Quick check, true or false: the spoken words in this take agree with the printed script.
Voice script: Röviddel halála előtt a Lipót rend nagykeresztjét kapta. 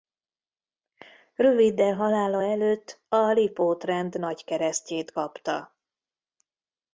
true